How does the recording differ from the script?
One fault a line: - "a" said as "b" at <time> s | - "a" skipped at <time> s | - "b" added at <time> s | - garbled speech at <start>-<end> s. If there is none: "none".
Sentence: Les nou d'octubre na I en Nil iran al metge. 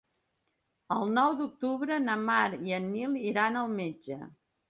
- "Les" said as "El" at 0.9 s
- "Mar" added at 2.3 s